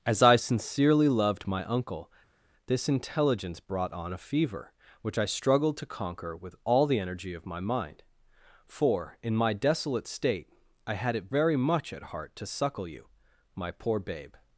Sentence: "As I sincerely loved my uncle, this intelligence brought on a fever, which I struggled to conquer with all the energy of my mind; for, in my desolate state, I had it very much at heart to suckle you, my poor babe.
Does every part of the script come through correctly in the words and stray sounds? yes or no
yes